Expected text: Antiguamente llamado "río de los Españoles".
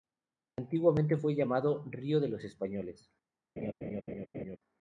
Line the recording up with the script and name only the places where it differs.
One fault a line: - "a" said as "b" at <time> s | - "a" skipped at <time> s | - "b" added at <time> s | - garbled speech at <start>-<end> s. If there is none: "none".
- "fue" added at 1.1 s